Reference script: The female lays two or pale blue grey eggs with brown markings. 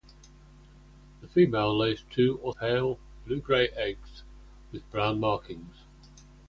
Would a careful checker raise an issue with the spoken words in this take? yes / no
no